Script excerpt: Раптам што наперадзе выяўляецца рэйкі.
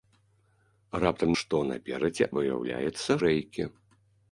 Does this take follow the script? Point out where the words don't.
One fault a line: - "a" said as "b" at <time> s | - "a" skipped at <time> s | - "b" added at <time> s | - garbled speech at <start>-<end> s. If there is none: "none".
none